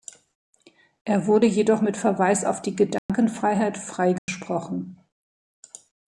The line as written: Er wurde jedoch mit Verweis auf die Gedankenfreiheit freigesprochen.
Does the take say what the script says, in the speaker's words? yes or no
yes